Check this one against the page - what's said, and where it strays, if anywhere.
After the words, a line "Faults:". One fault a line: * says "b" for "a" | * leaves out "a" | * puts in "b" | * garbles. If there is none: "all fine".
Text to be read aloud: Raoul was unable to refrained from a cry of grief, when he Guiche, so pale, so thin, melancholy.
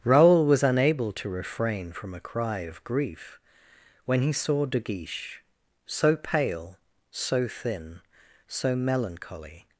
Raoul was unable to refrain from a cry of grief, when he saw De Guiche, so pale, so thin, so melancholy.
Faults:
* says "refrain" for "refrained"
* puts in "saw De"
* puts in "so"